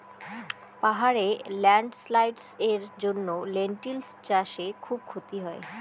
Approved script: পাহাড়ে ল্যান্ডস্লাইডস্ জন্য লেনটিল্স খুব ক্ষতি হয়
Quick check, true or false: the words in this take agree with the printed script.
false